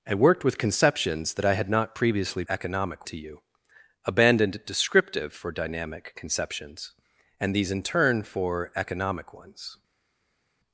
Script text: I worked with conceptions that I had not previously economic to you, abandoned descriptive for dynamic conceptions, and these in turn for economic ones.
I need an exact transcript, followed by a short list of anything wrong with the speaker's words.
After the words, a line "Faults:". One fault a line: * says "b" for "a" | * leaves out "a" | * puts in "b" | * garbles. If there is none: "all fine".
I worked with conceptions that I had not previously economic to you, abandoned descriptive for dynamic conceptions, and these in turn for economic ones.
Faults:
all fine